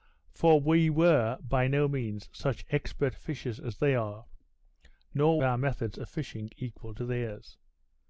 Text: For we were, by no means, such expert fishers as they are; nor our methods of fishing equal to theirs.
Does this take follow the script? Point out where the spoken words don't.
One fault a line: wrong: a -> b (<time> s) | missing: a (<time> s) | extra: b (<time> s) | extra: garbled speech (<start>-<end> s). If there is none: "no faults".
no faults